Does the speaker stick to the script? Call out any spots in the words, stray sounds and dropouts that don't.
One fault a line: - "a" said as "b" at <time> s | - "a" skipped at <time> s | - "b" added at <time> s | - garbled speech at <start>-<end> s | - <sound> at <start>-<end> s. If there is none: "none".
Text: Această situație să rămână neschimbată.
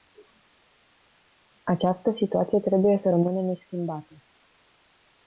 - "trebuie" added at 2.6 s